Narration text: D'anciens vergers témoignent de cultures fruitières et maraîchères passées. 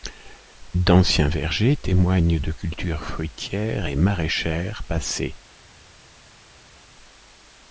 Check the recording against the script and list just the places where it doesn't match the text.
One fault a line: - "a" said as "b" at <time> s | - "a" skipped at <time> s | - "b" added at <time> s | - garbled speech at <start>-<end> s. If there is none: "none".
none